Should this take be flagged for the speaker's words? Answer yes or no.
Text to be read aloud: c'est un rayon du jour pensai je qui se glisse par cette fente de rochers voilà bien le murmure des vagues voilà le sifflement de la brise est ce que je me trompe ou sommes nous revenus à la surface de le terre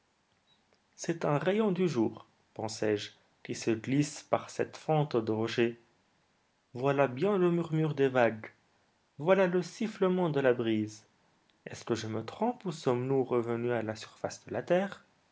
yes